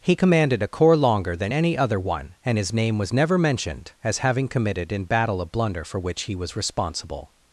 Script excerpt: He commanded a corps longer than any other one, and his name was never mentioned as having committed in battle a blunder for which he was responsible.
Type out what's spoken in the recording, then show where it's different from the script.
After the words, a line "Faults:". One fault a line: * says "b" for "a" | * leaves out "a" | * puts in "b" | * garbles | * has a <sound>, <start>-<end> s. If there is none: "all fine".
He commanded a corps longer than any other one, and his name was never mentioned as having committed in battle a blunder for which he was responsible.
Faults:
all fine